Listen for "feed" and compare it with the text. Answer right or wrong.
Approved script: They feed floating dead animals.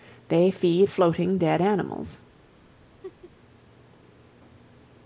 right